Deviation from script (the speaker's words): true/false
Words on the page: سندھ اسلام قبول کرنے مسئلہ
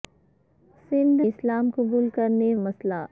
false